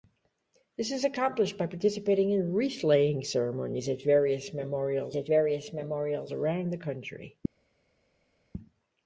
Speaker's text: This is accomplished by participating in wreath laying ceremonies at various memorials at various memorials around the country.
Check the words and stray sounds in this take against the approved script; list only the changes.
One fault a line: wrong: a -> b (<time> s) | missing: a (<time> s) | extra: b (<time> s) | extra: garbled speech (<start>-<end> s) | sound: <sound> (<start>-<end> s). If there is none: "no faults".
no faults